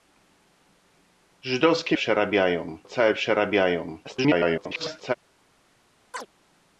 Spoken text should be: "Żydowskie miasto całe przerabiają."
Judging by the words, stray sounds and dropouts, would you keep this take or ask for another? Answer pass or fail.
fail